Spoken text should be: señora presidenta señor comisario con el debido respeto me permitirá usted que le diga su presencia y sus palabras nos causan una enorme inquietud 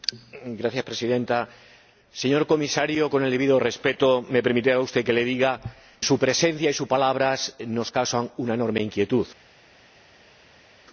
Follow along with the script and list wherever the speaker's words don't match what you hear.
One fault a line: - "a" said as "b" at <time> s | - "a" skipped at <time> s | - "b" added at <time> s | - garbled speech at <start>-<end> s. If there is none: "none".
none